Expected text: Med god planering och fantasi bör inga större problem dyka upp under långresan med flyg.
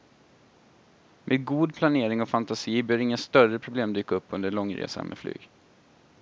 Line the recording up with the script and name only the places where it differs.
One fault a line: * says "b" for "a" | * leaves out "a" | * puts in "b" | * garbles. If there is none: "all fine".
all fine